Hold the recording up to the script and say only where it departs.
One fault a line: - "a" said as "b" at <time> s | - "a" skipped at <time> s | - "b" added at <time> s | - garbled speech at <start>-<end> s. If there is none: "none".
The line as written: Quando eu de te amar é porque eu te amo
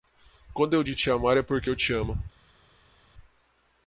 none